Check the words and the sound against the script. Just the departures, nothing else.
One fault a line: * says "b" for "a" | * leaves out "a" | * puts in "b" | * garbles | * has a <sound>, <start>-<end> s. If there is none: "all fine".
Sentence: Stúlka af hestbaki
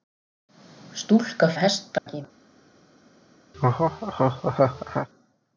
* has a dropout, 2.0-2.1 s
* has a laugh, 3.5-5.1 s